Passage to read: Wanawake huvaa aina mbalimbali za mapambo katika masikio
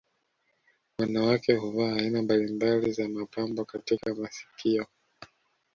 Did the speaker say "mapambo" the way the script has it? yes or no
yes